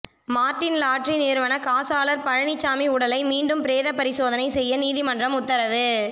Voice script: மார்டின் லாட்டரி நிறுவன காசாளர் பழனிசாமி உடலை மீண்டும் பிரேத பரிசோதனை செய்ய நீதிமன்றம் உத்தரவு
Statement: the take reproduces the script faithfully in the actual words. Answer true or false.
true